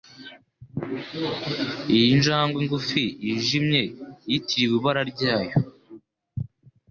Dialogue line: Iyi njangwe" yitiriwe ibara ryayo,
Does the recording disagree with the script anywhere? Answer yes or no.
yes